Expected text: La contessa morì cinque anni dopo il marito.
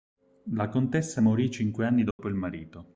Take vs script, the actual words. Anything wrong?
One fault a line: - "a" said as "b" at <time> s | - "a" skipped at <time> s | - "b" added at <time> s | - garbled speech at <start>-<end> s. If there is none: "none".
none